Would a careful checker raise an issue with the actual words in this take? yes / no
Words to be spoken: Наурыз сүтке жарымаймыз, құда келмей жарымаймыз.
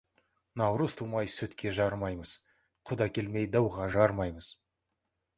yes